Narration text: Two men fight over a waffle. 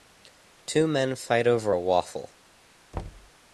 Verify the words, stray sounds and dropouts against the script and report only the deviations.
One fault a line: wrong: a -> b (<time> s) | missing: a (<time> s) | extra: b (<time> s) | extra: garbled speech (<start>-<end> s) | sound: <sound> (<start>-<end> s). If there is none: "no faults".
sound: thud (2.9-3.3 s)